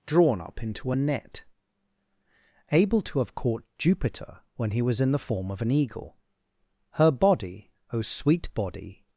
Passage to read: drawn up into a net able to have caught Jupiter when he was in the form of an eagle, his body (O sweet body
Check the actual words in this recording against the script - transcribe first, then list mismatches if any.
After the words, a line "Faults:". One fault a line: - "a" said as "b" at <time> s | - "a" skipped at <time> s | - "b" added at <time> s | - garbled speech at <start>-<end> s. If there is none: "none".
drawn up into a net able to have caught Jupiter when he was in the form of an eagle, her body (O sweet body
Faults:
- "his" said as "her" at 6.9 s